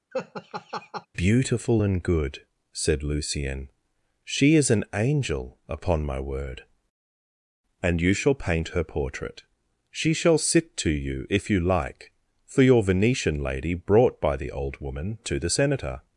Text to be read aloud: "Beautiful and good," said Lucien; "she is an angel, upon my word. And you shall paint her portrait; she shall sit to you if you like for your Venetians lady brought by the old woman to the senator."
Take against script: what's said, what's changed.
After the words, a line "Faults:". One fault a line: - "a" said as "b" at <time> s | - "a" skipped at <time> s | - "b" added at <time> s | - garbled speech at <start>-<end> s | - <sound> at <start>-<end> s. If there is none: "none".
"Beautiful and good," said Lucien; "she is an angel, upon my word. And you shall paint her portrait; she shall sit to you if you like for your Venetian lady brought by the old woman to the senator."
Faults:
- laugh at 0.1-1.1 s
- "Venetians" said as "Venetian" at 12.8 s